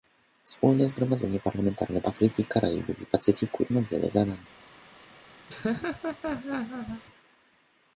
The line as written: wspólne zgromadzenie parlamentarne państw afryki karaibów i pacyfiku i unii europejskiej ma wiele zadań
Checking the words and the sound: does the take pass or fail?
fail